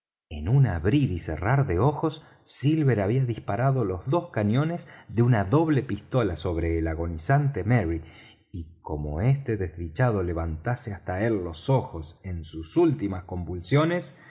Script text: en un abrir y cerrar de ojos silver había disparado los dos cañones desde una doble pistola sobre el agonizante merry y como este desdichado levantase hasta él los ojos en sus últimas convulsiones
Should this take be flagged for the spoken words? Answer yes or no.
yes